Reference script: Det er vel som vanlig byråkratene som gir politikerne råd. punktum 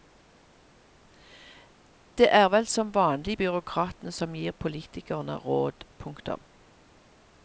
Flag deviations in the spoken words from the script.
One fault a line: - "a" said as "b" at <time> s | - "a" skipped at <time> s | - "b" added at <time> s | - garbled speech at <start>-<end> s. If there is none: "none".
none